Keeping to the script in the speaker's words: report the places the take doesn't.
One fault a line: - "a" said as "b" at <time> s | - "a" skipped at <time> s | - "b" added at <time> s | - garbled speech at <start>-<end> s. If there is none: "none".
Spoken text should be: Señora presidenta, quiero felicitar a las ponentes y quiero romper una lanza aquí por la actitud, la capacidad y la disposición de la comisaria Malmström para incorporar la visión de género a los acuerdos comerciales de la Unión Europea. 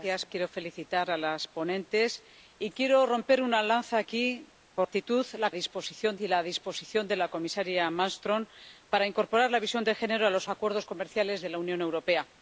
- "presidenta" skipped at 0.3 s
- "la" skipped at 4.9 s
- "capacidad" said as "disposición" at 5.5 s